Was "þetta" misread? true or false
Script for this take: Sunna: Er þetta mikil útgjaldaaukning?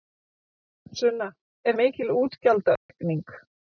true